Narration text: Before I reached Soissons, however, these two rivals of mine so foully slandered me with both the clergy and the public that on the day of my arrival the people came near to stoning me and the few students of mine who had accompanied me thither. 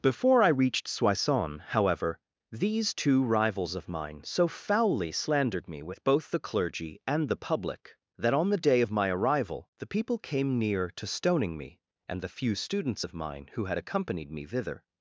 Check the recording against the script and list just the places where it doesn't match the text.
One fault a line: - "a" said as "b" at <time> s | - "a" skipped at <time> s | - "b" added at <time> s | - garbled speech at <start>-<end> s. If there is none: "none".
none